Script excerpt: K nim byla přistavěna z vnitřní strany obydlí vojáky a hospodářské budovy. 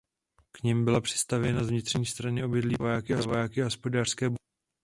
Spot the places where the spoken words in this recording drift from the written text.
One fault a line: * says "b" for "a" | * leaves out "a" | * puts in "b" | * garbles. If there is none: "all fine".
all fine